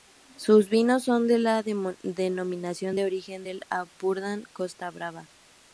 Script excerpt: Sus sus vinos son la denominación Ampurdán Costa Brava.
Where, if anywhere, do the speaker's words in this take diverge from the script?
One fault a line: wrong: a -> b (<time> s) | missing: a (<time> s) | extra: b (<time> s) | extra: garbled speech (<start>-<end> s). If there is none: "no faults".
missing: sus (0.7 s)
extra: de (1.3 s)
extra: de origen del (2.9 s)